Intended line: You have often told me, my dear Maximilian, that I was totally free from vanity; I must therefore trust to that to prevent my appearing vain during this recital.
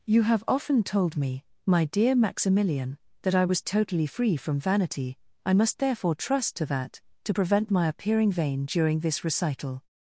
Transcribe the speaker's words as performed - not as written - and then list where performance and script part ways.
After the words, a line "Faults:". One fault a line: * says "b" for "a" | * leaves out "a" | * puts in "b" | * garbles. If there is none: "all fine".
You have often told me, my dear Maximilian, that I was totally free from vanity; I must therefore trust to that to prevent my appearing vain during this recital.
Faults:
all fine